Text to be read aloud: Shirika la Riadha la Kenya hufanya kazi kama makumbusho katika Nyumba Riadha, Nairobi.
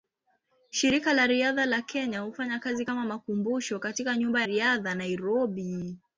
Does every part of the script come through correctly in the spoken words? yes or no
yes